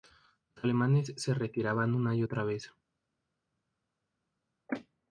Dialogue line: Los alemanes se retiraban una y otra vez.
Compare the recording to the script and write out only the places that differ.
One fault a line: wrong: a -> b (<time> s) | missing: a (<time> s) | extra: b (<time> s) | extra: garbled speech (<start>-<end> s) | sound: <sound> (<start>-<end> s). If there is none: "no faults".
no faults